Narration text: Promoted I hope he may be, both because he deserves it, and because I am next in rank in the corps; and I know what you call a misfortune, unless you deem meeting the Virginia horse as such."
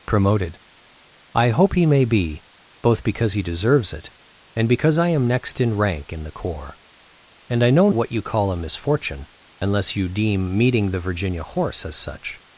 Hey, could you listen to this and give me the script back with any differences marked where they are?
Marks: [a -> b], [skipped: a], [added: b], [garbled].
Promoted I hope he may be, both because he deserves it, and because I am next in rank in the corps; and I know what you call a misfortune, unless you deem meeting the Virginia horse as such."